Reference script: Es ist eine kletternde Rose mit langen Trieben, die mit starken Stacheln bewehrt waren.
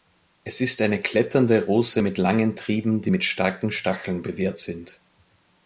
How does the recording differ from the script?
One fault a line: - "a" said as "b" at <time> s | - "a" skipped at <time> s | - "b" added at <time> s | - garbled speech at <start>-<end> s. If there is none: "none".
- "waren" said as "sind" at 4.6 s